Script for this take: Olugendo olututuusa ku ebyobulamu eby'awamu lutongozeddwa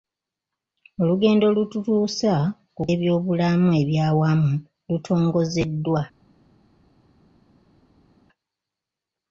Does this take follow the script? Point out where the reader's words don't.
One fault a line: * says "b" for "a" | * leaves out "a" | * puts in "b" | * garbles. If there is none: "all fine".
all fine